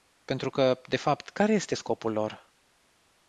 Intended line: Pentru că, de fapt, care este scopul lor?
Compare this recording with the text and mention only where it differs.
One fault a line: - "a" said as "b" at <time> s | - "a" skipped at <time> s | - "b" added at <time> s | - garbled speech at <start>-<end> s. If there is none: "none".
none